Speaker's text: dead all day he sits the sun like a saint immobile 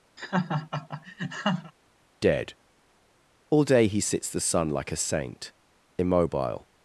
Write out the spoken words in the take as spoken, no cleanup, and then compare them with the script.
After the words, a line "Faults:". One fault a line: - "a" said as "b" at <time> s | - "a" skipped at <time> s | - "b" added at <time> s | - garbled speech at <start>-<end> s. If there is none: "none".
dead all day he sits the sun like a saint immobile
Faults:
none